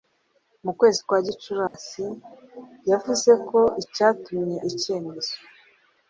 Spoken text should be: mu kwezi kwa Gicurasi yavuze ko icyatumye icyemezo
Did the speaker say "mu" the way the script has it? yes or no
yes